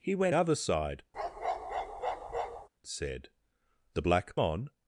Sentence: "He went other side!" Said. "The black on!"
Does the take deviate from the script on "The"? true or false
false